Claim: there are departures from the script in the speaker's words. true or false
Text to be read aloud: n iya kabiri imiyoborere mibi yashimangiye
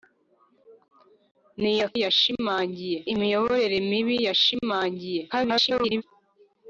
true